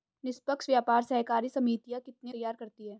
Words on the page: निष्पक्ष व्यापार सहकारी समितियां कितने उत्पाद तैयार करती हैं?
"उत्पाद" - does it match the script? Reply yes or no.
no